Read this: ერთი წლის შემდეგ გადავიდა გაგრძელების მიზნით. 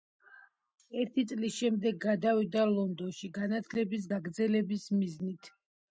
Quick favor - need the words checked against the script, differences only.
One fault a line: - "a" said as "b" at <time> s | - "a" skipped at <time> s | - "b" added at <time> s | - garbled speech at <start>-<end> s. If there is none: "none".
- "ლონდონში განათლების" added at 2.7 s